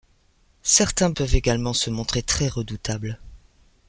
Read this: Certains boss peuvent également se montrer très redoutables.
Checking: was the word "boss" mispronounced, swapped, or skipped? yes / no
yes